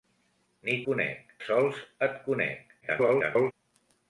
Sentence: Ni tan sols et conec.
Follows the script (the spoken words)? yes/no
no